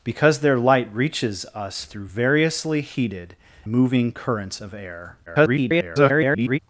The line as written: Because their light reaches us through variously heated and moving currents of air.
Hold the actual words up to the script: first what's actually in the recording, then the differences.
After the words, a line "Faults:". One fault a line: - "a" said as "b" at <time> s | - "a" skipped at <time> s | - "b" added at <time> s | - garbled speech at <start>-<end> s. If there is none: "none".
Because their light reaches us through variously heated moving currents of air. [garbled]
Faults:
- "and" skipped at 3.4 s
- garbled speech at 5.3-6.6 s